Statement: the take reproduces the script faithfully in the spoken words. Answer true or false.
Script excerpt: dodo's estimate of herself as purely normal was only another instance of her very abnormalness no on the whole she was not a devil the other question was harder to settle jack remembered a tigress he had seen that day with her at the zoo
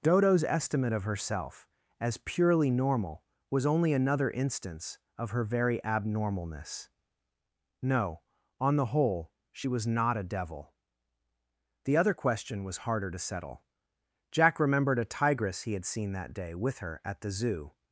true